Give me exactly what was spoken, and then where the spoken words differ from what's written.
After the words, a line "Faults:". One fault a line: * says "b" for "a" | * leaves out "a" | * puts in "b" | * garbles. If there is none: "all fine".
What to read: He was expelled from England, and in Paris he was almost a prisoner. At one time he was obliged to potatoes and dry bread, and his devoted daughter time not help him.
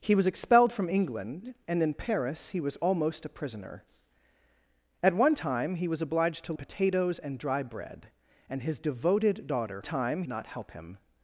He was expelled from England, and in Paris he was almost a prisoner. At one time he was obliged to potatoes and dry bread, and his devoted daughter time not help him.
Faults:
all fine